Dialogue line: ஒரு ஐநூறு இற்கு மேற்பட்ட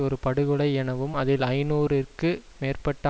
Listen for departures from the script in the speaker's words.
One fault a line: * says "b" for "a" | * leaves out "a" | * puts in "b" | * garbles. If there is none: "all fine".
* puts in "படுகொலை எனவும் அதில்"